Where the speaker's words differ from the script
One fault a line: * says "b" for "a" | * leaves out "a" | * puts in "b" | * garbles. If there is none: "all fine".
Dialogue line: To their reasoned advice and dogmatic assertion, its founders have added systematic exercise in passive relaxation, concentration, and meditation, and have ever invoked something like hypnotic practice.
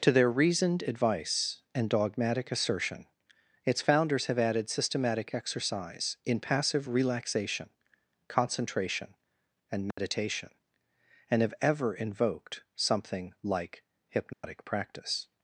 all fine